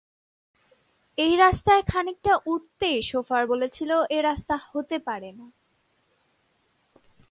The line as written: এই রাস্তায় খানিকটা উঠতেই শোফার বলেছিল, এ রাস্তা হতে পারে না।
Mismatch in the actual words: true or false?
false